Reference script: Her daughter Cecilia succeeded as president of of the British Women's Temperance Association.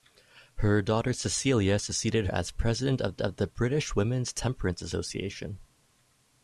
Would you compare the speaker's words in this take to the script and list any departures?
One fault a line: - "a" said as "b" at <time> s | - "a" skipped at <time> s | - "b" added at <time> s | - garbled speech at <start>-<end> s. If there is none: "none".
none